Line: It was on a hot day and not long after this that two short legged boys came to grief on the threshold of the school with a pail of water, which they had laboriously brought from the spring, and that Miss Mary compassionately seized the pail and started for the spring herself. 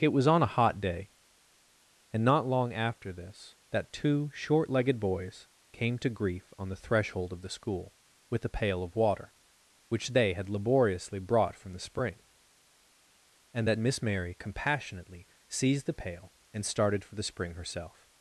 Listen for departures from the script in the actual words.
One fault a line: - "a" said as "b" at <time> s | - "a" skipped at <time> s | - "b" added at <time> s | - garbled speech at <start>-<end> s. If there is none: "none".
none